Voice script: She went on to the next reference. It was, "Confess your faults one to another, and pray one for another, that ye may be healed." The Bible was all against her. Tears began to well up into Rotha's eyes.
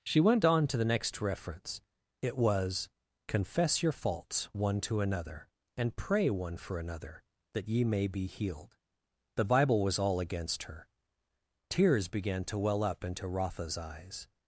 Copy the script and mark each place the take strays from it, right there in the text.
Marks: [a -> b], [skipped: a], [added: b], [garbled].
She went on to the next reference. It was, "Confess your faults one to another, and pray one for another, that ye may be healed." The Bible was all against her. Tears began to well up into Rotha's eyes.